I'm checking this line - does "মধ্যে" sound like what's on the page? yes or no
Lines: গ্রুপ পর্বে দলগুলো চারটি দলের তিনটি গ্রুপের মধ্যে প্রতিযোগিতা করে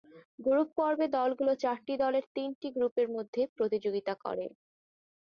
yes